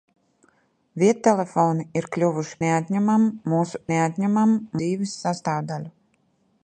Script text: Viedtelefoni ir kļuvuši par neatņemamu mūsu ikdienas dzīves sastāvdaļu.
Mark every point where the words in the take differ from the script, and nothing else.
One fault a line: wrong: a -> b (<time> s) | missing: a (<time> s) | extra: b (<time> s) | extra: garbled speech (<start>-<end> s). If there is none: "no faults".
missing: par (2.6 s)
wrong: ikdienas -> neatņemamu (3.9 s)